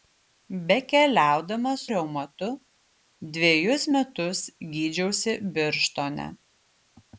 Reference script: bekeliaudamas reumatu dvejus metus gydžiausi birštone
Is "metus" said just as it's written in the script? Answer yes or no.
yes